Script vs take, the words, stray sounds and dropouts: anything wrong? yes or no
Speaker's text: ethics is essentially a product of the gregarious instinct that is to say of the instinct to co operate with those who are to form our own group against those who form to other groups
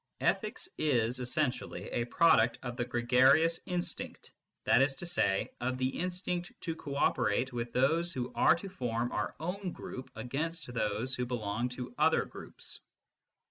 yes